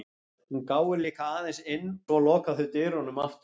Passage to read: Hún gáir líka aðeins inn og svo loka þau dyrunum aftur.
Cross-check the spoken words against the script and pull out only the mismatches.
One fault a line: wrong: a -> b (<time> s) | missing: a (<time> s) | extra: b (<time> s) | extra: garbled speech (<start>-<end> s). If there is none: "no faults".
missing: og (1.9 s)